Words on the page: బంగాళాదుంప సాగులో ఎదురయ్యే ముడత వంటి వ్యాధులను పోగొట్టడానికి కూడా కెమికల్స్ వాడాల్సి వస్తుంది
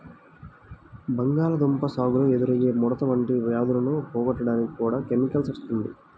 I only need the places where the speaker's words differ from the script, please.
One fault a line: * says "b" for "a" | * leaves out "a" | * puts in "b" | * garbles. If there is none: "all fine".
* leaves out "వాడాల్సి"